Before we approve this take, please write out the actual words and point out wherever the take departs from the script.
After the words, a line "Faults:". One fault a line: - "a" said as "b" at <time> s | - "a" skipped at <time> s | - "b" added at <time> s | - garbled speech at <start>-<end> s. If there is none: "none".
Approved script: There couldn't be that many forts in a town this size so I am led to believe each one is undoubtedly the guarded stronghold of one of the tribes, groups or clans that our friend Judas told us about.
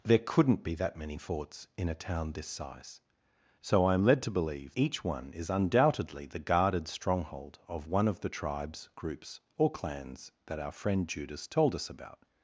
There couldn't be that many forts in a town this size so I am led to believe each one is undoubtedly the guarded stronghold of one of the tribes, groups or clans that our friend Judas told us about.
Faults:
none